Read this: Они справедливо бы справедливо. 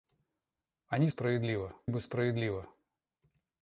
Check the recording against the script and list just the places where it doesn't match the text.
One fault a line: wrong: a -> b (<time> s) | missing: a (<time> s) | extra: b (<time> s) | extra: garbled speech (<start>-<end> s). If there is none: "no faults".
no faults